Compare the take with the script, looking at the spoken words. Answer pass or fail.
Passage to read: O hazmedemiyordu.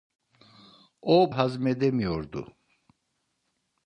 pass